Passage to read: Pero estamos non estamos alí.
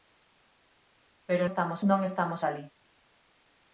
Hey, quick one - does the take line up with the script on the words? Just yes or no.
yes